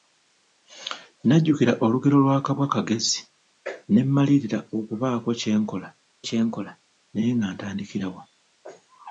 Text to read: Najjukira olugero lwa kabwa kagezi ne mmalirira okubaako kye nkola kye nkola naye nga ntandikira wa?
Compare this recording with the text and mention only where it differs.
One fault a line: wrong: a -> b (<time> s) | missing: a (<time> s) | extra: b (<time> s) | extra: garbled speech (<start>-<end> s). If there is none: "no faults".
no faults